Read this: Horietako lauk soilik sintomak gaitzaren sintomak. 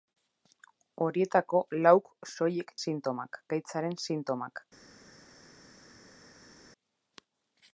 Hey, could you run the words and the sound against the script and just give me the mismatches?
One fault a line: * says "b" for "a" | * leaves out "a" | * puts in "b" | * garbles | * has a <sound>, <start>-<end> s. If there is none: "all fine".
all fine